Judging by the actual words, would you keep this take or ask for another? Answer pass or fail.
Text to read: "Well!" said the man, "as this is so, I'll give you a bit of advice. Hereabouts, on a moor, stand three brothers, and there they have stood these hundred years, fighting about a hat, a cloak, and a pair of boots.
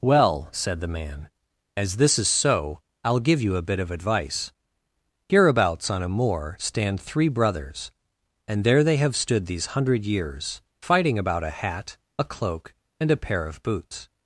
pass